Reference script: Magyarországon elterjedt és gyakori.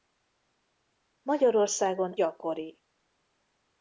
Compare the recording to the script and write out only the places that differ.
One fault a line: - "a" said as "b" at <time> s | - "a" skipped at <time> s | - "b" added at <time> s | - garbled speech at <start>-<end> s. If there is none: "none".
- "elterjedt és" skipped at 2.2 s